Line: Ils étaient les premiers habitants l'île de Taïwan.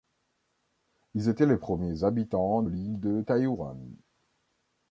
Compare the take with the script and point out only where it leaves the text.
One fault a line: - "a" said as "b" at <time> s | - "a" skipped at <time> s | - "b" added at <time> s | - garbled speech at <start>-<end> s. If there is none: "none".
none